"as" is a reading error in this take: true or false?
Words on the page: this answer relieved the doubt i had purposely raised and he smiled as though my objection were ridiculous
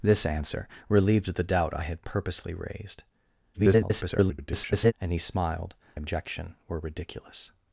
true